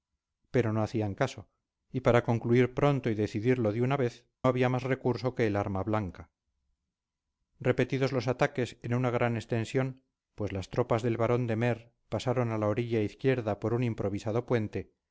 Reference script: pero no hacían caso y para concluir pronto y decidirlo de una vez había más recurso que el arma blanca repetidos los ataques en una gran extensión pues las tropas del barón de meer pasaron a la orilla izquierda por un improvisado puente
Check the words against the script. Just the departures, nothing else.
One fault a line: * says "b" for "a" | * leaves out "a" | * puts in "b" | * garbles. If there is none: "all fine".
all fine